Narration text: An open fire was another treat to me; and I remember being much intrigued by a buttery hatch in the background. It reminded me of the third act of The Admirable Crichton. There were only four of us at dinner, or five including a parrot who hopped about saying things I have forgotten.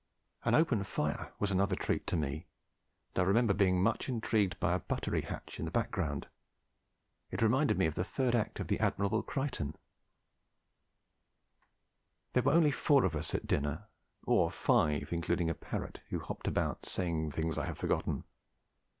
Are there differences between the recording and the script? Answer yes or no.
no